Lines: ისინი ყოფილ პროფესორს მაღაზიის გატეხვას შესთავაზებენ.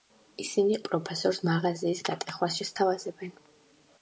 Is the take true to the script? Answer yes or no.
no